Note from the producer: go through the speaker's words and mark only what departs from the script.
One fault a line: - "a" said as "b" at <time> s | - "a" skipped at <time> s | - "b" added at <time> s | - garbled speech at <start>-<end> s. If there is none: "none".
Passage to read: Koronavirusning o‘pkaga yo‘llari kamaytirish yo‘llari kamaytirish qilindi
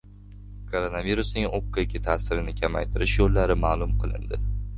- "yo‘llari" said as "ta'sirini" at 2.1 s
- "kamaytirish" said as "ma'lum" at 3.7 s